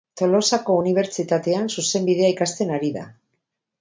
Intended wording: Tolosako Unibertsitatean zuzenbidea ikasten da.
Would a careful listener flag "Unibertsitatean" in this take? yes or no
no